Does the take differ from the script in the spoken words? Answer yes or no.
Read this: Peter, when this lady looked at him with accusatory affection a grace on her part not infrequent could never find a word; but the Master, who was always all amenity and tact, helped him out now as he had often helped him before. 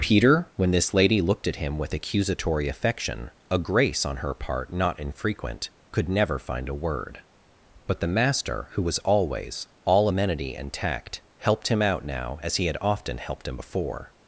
no